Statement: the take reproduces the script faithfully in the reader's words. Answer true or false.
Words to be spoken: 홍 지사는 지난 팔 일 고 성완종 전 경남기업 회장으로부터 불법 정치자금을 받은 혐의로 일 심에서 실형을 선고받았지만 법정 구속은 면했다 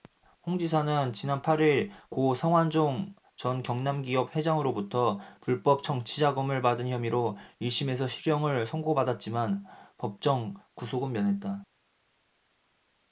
true